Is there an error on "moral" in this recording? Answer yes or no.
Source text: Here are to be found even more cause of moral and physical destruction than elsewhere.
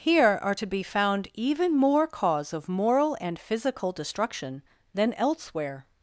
no